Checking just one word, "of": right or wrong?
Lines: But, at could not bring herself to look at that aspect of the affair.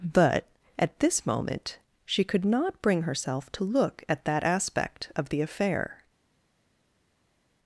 right